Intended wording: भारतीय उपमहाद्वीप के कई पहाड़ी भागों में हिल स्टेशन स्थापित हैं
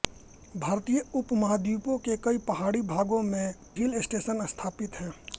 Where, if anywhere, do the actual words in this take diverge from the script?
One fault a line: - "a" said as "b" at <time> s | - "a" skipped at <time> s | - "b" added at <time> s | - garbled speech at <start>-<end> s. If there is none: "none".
none